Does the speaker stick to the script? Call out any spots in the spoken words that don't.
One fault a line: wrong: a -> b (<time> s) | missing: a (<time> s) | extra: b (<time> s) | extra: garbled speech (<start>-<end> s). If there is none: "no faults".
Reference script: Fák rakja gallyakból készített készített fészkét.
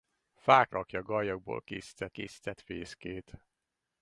no faults